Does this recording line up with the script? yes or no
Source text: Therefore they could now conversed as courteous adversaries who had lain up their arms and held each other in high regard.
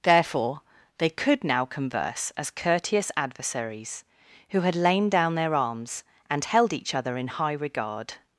no